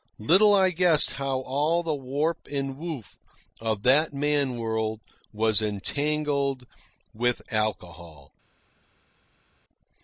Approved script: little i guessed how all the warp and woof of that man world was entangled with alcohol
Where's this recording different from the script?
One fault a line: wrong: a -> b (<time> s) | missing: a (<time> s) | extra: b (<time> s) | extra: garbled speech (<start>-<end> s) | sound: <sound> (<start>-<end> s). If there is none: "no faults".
no faults